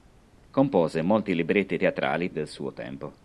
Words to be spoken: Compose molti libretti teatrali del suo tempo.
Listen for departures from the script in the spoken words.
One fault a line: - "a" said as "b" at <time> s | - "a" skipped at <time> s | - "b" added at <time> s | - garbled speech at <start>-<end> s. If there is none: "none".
none